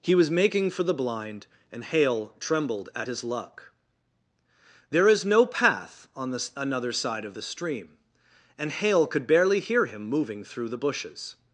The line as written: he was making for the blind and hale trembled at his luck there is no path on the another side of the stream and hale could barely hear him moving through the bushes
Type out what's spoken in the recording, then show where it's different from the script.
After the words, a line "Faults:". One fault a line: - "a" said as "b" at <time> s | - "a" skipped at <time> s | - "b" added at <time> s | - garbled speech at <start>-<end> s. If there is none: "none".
he was making for the blind and hale trembled at his luck there is no path on the another side of the stream and hale could barely hear him moving through the bushes
Faults:
none